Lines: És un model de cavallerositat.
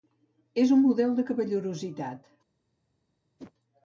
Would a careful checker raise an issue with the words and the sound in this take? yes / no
yes